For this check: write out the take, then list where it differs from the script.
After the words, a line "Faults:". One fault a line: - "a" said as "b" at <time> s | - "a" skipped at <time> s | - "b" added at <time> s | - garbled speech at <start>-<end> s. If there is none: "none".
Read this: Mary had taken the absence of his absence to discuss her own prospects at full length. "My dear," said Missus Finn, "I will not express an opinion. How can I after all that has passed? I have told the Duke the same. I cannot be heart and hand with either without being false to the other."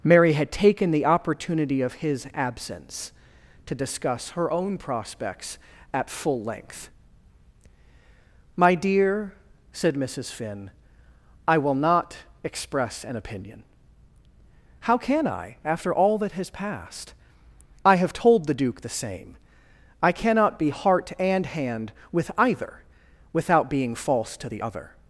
Mary had taken the opportunity of his absence to discuss her own prospects at full length. "My dear," said Missus Finn, "I will not express an opinion. How can I after all that has passed? I have told the Duke the same. I cannot be heart and hand with either without being false to the other."
Faults:
- "absence" said as "opportunity" at 1.1 s